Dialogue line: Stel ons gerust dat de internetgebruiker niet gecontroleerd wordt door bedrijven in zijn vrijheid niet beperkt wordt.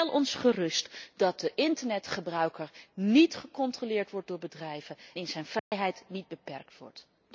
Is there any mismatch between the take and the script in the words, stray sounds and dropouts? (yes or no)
yes